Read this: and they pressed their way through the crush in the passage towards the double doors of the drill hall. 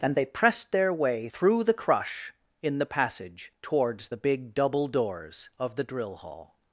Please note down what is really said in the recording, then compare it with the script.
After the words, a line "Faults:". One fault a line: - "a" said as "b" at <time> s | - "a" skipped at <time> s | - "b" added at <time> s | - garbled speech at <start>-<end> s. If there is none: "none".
and they pressed their way through the crush in the passage towards the big double doors of the drill hall.
Faults:
- "big" added at 4.2 s